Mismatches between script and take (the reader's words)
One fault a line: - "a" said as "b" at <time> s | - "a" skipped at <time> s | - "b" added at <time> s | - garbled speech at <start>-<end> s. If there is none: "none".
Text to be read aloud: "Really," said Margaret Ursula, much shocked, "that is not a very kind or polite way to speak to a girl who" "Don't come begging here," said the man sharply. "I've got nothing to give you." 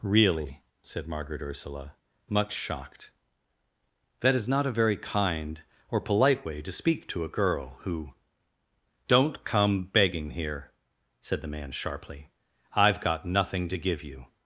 none